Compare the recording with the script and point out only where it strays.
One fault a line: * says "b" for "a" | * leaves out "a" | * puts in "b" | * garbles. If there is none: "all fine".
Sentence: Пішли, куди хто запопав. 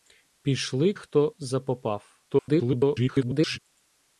* leaves out "куди"
* garbles